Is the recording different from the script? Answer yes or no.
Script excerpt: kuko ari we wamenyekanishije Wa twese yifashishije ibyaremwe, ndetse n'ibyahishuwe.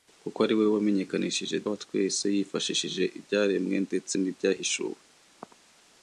no